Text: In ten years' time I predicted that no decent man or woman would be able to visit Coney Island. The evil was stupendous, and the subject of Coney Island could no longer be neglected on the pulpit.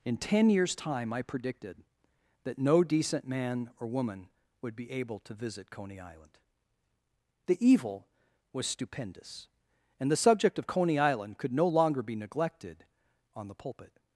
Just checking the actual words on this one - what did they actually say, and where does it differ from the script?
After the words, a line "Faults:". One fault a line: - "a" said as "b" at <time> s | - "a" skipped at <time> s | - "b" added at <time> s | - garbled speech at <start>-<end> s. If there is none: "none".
In ten years' time I predicted that no decent man or woman would be able to visit Coney Island. The evil was stupendous, and the subject of Coney Island could no longer be neglected on the pulpit.
Faults:
none